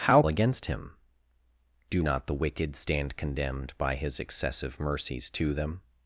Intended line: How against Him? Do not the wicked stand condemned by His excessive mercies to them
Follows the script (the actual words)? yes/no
yes